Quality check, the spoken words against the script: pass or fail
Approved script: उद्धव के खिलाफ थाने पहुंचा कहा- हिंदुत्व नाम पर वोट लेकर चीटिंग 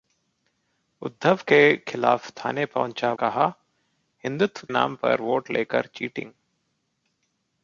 pass